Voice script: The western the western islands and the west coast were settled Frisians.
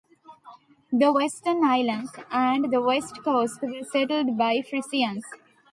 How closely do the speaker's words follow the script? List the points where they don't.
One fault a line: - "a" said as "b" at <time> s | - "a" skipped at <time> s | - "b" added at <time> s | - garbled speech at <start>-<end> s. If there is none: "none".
- "the western" skipped at 1.6 s
- "by" added at 4.4 s